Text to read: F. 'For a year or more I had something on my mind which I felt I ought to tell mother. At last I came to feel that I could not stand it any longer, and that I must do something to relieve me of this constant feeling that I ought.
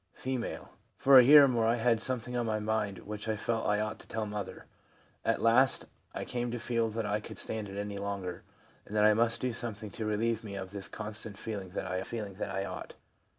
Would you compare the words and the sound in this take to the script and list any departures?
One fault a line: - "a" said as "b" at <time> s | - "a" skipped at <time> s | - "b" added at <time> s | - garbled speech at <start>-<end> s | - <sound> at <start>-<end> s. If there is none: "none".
- "not" skipped at 7.4 s
- "feeling that I" added at 12.0 s